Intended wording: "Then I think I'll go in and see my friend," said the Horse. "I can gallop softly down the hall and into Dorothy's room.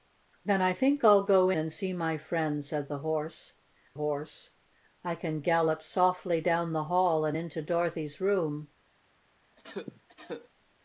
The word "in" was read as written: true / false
false